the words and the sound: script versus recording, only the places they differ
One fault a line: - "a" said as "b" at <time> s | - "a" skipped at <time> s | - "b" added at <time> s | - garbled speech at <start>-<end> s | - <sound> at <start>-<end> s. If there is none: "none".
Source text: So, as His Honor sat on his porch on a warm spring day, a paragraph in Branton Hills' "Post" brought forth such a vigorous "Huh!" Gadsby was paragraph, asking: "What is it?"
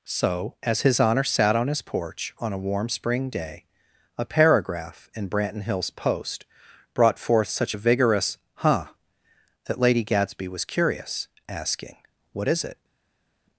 - "that Lady" added at 9.7 s
- "paragraph" said as "curious" at 10.6 s